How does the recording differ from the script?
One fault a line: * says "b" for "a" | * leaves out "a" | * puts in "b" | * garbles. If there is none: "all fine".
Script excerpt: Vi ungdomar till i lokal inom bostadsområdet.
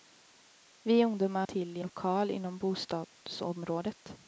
all fine